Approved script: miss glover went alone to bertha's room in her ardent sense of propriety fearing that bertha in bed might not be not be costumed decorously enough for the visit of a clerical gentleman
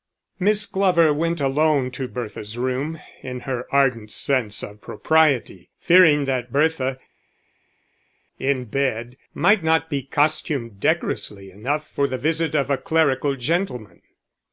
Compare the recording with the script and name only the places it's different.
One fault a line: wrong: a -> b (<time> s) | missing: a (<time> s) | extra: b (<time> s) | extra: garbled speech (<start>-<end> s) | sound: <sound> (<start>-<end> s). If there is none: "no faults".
missing: not be (10.0 s)